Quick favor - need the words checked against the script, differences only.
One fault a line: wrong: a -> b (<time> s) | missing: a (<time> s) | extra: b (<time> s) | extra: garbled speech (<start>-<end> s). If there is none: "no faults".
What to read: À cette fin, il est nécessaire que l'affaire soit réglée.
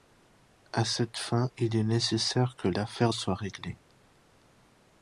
no faults